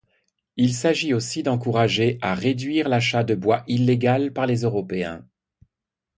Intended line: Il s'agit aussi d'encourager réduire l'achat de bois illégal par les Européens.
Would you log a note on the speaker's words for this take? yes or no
yes